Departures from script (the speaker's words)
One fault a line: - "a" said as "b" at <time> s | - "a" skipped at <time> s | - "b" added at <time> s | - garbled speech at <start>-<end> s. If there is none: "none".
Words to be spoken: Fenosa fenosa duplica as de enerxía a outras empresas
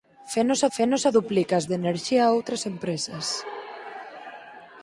none